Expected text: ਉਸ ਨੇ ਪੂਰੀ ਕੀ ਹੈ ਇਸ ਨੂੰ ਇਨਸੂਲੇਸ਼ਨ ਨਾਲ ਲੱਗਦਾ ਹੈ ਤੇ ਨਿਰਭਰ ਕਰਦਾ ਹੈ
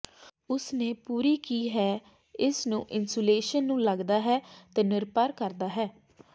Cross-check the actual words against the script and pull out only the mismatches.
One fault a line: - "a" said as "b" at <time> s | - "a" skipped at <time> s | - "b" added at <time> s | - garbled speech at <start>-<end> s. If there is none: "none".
- "ਨਾਲ" said as "ਨੂੰ" at 3.6 s